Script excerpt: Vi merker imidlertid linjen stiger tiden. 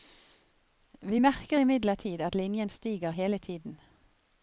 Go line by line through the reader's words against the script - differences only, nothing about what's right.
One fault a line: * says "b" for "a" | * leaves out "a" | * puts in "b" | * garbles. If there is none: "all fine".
* puts in "at"
* puts in "hele"